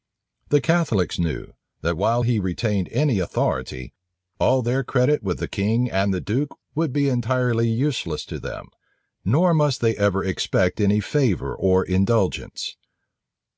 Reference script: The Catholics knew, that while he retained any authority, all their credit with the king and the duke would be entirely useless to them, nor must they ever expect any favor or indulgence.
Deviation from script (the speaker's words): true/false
false